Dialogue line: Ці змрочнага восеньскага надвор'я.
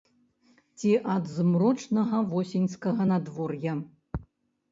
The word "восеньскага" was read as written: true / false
true